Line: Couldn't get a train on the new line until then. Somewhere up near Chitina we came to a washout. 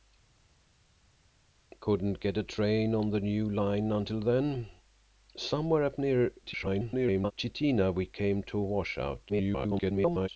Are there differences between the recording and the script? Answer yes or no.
yes